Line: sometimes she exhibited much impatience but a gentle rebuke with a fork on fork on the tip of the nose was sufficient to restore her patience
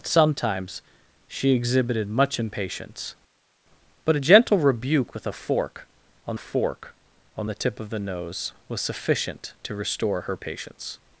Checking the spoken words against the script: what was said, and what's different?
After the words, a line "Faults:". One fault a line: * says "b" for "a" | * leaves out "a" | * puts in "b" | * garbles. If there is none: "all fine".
sometimes she exhibited much impatience but a gentle rebuke with a fork on fork on the tip of the nose was sufficient to restore her patience
Faults:
all fine